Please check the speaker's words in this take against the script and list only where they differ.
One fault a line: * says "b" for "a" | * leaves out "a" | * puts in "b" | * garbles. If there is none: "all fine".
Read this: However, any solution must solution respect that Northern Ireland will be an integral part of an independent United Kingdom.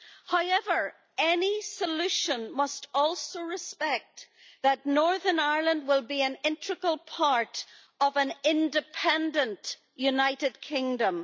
* says "also" for "solution"